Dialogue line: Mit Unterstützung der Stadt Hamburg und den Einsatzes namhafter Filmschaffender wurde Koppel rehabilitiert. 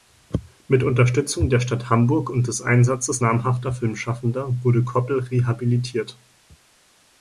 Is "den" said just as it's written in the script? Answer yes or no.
no